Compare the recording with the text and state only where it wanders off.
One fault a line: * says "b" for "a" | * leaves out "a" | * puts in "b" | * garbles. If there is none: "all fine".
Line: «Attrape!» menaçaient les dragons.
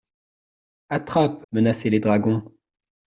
all fine